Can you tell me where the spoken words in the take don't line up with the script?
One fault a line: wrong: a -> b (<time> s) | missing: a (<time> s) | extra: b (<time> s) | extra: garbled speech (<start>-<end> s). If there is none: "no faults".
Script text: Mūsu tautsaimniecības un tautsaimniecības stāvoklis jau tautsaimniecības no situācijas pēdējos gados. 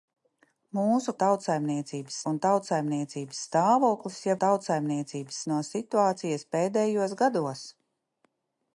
no faults